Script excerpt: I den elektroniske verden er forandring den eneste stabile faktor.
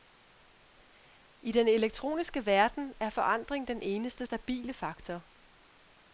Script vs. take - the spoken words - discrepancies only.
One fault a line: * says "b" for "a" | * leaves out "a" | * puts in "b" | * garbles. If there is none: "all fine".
all fine